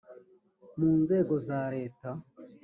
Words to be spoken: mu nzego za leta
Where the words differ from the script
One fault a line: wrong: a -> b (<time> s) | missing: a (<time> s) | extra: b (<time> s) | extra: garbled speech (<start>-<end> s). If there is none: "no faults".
no faults